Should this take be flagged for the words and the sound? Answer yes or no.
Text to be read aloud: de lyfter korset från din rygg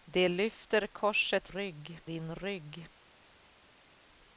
yes